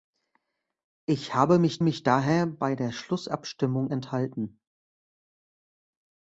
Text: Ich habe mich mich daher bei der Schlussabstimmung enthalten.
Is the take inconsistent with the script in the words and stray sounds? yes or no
no